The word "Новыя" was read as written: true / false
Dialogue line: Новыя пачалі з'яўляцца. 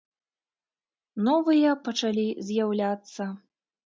true